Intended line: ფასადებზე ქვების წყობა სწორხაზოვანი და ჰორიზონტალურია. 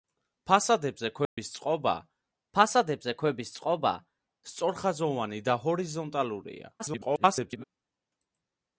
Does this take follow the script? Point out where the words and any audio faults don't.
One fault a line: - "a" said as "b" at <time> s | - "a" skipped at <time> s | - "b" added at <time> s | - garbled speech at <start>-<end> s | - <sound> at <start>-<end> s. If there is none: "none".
- dropout at 1.2-1.4 s
- "ფასადებზე ქვების წყობა" added at 2.6 s
- garbled speech at 6.8-7.6 s